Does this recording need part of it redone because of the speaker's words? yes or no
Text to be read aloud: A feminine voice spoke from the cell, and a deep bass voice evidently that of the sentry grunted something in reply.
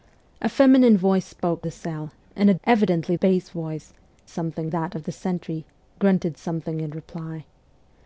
yes